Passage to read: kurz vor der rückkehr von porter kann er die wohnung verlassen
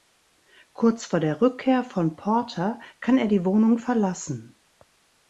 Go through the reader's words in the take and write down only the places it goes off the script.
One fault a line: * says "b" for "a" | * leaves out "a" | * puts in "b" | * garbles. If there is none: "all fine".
all fine